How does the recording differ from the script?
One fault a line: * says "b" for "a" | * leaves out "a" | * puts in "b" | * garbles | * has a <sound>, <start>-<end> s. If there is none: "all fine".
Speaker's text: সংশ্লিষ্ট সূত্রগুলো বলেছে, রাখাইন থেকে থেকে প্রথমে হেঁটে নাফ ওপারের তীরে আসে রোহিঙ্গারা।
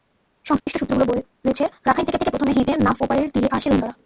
* has a dropout, 0.6-0.7 s